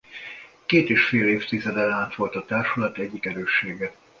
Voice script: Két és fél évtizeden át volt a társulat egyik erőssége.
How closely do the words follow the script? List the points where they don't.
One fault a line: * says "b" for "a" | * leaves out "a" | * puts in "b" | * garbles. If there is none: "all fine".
all fine